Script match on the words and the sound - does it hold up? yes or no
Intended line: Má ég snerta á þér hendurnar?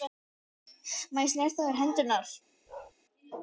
no